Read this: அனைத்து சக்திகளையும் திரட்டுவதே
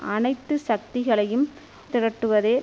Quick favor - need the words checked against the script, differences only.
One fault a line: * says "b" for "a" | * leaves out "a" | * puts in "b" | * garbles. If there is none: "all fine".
all fine